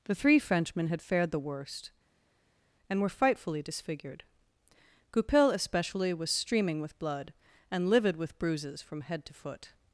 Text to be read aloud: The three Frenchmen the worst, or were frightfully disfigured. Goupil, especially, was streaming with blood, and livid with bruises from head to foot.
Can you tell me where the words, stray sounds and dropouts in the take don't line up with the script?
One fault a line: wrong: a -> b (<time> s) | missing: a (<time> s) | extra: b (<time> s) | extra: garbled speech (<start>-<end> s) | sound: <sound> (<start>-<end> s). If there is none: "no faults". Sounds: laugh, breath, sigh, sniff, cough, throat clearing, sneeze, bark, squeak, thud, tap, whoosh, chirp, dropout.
extra: had fared (0.9 s)
wrong: or -> and (2.9 s)